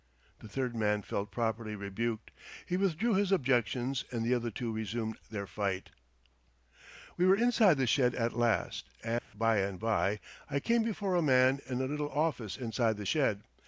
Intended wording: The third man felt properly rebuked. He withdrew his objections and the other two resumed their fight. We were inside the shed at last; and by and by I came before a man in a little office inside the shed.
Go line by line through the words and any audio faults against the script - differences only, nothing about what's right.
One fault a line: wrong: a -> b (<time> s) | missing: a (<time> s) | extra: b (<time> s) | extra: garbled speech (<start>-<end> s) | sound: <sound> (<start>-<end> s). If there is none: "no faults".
sound: dropout (9.2-9.3 s)